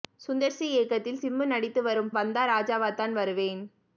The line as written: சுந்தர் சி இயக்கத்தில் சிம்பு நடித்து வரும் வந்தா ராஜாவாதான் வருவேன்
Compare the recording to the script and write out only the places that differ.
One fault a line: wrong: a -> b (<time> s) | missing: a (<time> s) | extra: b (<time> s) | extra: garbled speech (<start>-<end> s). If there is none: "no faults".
no faults